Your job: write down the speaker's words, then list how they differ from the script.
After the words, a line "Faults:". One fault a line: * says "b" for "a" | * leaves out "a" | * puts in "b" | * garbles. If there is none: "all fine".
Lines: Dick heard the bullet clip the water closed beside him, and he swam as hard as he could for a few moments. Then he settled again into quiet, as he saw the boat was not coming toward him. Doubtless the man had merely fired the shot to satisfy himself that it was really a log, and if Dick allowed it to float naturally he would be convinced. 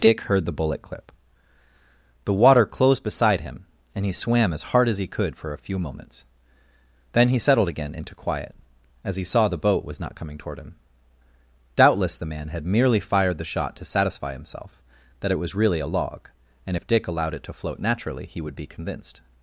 Dick heard the bullet clip the water closed beside him, and he swam as hard as he could for a few moments. Then he settled again into quiet, as he saw the boat was not coming toward him. Doubtless the man had merely fired the shot to satisfy himself that it was really a log, and if Dick allowed it to float naturally he would be convinced.
Faults:
all fine